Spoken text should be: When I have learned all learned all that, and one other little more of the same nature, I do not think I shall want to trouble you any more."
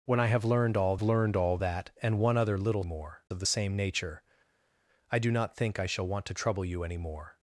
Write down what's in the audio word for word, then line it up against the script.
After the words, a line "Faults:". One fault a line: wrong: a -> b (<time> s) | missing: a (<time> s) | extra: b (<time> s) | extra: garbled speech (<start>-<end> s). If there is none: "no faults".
When I have learned all learned all that, and one other little more of the same nature, I do not think I shall want to trouble you any more."
Faults:
no faults